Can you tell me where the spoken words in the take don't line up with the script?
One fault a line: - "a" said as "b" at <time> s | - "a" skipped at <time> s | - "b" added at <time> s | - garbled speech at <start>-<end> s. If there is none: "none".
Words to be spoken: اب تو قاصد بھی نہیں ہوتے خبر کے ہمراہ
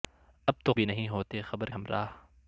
- "قاصد" skipped at 0.7 s
- "کے" skipped at 1.7 s